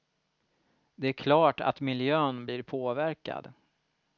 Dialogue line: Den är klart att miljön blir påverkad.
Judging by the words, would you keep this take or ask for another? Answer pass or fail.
fail